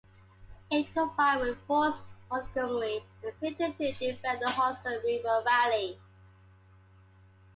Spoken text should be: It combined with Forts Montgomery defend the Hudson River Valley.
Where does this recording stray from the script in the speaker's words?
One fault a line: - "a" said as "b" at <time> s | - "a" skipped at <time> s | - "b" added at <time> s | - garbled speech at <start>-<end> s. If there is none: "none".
- "and Clinton to" added at 3.2 s